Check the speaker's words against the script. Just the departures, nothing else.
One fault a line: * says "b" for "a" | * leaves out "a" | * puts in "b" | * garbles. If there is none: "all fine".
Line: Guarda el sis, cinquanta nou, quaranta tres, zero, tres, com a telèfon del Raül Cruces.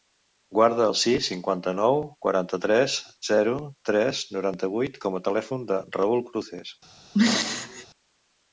* puts in "noranta vuit"